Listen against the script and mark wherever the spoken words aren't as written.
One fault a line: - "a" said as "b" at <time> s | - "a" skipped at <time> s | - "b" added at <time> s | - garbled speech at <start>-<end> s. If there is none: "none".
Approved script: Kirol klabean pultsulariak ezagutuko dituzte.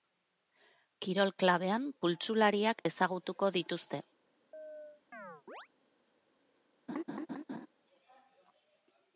none